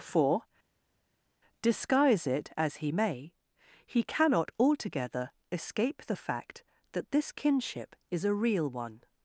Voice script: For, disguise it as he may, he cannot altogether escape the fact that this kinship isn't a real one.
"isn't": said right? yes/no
no